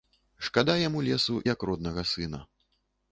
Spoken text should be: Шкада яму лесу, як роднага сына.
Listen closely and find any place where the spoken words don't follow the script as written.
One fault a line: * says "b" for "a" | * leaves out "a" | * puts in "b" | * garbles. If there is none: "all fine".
all fine